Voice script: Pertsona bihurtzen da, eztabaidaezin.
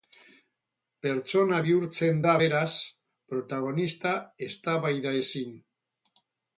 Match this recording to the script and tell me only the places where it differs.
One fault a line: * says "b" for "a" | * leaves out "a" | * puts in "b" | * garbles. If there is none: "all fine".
* puts in "beraz protagonista"